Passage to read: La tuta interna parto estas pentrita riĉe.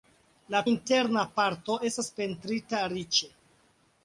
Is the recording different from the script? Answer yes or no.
yes